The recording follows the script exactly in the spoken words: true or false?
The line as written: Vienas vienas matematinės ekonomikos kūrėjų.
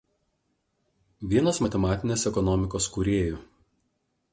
false